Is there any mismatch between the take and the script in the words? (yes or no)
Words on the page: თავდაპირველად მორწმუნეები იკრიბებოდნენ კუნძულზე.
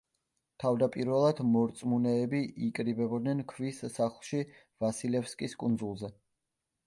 yes